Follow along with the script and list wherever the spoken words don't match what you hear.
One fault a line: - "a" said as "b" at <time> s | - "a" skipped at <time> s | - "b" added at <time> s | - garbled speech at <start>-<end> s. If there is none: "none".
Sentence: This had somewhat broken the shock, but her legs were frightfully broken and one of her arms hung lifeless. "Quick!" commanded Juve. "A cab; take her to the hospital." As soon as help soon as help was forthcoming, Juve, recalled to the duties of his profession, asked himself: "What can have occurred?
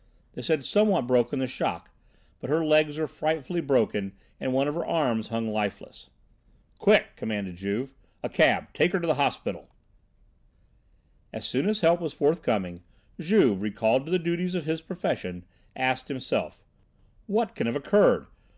- "soon as help" skipped at 12.0 s